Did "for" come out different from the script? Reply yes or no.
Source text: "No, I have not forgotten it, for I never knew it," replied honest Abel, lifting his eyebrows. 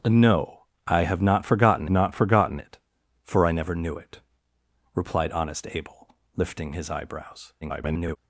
no